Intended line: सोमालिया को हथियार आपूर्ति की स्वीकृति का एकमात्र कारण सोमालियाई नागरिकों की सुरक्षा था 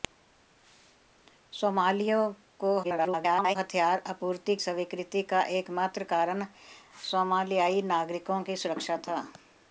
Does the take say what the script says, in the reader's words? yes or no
no